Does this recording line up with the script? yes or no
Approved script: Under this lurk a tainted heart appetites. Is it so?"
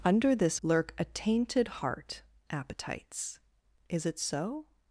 yes